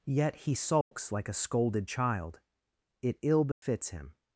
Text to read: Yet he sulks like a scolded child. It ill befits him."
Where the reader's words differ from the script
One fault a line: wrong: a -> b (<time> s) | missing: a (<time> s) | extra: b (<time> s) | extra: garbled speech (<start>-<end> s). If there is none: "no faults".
no faults